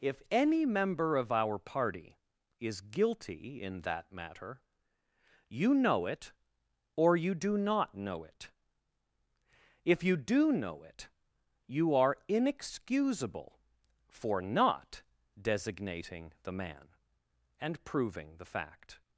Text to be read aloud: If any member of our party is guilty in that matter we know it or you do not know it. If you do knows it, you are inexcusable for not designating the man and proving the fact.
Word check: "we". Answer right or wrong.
wrong